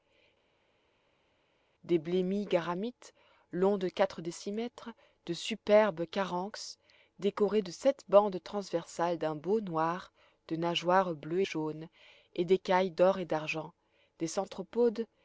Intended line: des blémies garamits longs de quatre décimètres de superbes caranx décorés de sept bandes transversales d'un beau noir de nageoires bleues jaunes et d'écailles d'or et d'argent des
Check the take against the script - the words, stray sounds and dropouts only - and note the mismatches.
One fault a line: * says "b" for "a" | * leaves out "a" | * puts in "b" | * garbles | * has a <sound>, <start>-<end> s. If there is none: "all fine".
all fine